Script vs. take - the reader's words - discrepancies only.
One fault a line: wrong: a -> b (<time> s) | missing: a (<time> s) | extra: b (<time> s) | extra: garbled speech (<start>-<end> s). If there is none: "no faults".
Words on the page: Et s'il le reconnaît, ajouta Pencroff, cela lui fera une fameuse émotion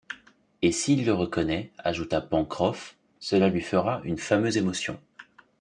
no faults